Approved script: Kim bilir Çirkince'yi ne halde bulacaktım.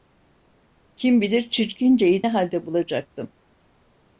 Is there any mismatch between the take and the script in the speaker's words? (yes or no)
no